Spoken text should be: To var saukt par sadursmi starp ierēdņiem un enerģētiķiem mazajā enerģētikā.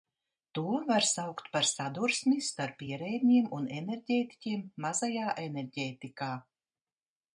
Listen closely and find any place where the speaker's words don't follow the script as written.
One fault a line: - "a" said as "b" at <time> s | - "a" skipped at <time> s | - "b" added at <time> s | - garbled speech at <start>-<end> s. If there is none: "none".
none